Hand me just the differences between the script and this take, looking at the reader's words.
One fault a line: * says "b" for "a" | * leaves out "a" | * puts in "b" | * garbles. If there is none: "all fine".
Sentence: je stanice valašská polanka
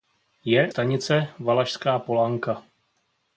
all fine